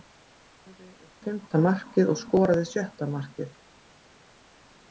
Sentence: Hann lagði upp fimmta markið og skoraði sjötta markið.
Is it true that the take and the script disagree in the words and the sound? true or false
false